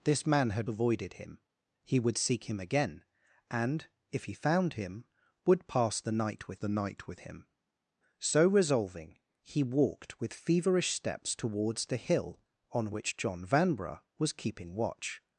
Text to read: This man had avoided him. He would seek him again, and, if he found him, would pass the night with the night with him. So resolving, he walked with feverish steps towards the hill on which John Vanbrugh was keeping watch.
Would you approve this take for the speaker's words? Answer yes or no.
yes